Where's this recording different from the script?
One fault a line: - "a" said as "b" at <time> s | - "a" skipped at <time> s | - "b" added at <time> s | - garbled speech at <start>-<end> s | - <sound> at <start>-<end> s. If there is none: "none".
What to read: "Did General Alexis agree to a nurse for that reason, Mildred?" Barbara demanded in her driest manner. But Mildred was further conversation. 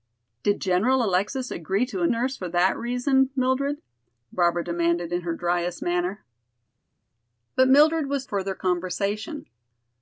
none